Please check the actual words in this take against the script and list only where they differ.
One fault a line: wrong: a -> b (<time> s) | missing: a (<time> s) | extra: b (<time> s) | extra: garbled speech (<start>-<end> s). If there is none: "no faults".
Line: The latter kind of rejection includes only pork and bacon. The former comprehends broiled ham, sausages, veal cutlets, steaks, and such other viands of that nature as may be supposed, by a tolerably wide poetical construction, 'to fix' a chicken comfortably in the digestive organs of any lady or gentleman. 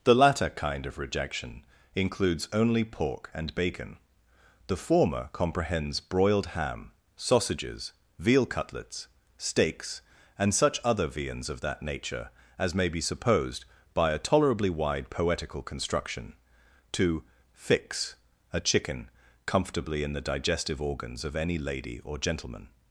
no faults